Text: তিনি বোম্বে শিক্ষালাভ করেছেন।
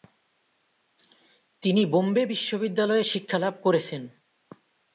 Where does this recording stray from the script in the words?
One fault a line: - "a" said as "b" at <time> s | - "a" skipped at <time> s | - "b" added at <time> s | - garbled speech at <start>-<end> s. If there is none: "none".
- "বিশ্ববিদ্যালয়ে" added at 2.2 s